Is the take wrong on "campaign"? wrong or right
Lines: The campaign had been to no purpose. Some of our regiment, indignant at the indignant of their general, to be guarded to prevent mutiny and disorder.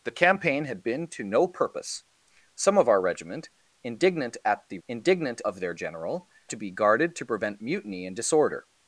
right